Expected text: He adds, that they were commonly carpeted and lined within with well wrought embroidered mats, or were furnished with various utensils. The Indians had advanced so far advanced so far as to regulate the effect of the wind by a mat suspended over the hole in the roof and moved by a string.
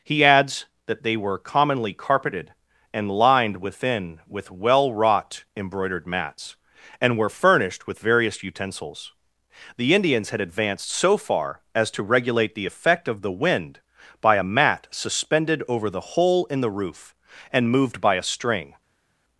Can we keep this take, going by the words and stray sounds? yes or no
no